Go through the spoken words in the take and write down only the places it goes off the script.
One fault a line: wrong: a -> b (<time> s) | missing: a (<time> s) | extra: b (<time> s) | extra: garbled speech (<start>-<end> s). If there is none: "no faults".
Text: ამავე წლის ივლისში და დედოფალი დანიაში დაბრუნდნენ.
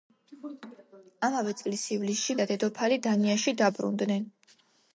no faults